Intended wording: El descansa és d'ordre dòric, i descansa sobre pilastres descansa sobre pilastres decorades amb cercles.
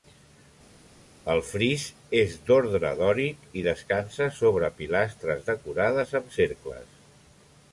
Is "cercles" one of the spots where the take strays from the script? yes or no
no